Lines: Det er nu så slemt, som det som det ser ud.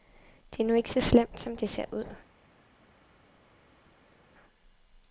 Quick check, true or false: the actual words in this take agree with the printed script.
false